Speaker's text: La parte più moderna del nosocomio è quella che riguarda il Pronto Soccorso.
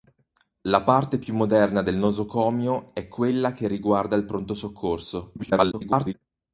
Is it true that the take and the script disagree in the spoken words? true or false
true